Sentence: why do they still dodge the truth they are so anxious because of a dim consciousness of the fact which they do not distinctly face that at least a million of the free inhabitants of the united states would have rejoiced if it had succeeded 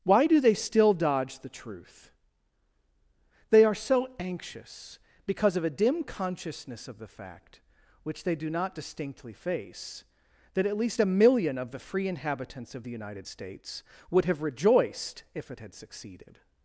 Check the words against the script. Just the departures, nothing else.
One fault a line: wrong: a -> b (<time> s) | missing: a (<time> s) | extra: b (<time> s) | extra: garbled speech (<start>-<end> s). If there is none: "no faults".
no faults